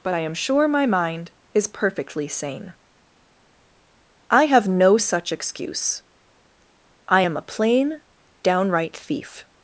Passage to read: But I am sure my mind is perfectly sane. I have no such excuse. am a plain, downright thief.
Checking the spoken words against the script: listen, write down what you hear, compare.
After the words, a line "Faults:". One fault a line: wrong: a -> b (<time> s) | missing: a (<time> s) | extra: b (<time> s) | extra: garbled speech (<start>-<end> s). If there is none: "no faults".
But I am sure my mind is perfectly sane. I have no such excuse. I am a plain, downright thief.
Faults:
extra: I (7.1 s)